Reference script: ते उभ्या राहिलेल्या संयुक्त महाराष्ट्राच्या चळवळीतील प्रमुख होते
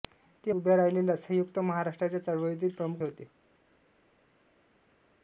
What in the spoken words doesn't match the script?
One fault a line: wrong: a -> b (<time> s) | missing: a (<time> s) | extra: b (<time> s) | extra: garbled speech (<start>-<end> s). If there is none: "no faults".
no faults